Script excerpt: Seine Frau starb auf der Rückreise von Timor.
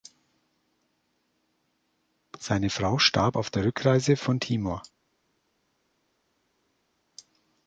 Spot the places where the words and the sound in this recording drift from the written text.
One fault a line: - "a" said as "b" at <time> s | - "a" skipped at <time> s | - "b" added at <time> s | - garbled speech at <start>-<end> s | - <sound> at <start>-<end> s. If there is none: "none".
none